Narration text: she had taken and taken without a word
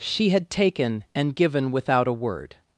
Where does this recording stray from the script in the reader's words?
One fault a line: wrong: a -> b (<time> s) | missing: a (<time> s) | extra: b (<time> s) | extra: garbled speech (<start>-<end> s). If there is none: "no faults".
wrong: taken -> given (1.3 s)